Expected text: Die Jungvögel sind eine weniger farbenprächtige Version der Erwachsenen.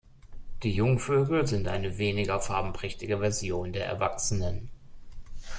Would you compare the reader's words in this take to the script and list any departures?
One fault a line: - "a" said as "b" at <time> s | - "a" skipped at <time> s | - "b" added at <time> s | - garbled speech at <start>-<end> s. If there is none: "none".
none